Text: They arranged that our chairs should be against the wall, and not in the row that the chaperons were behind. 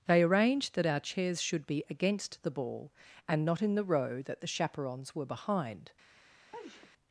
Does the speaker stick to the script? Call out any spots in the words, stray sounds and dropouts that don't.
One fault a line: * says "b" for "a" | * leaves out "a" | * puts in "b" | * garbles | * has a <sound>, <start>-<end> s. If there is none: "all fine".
* says "ball" for "wall"
* has a sneeze, 6.5-6.9 s